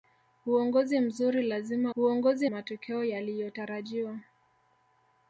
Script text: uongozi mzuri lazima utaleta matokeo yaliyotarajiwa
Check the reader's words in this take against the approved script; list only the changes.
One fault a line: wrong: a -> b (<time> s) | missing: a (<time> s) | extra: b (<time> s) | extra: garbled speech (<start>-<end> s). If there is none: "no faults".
wrong: utaleta -> uongozi (2.0 s)